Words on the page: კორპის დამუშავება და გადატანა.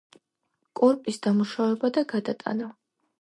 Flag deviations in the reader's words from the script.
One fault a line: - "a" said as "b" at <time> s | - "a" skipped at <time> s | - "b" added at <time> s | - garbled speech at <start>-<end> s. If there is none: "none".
none